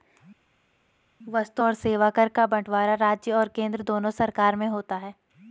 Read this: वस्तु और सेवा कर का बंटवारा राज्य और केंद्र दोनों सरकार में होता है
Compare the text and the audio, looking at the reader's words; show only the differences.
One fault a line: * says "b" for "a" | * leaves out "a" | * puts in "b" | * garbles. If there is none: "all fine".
all fine